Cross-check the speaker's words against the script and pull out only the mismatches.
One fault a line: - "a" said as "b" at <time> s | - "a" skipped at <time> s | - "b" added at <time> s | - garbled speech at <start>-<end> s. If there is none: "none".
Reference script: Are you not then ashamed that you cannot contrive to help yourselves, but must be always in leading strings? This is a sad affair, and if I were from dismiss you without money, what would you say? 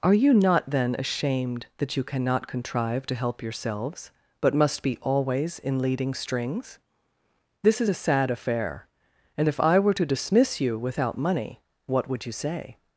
- "from" said as "to" at 9.9 s